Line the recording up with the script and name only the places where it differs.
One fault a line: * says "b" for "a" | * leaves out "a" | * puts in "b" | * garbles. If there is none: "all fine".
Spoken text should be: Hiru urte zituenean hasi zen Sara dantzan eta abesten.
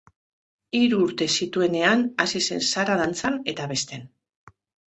all fine